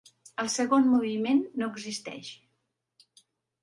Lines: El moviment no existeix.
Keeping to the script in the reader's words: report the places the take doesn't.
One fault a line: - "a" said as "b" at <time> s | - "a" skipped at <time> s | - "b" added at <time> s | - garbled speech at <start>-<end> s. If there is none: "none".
- "segon" added at 0.5 s